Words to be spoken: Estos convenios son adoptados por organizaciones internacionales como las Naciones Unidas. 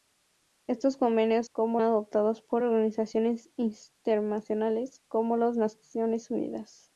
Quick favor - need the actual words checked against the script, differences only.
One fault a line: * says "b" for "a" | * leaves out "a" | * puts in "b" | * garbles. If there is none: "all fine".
* says "como" for "son"